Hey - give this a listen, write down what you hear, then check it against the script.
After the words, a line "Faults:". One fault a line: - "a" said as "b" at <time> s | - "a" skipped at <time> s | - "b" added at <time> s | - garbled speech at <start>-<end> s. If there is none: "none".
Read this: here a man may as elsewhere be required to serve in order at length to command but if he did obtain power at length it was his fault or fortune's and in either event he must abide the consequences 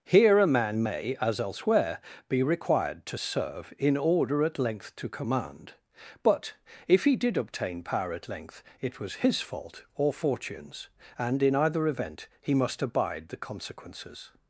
here a man may as elsewhere be required to serve in order at length to command but if he did obtain power at length it was his fault or fortune's and in either event he must abide the consequences
Faults:
none